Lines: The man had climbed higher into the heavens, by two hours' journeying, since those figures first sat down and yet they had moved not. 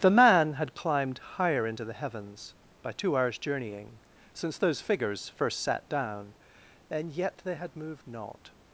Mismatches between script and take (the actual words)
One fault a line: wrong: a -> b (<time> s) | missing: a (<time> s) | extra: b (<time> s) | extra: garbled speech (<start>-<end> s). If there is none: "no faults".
no faults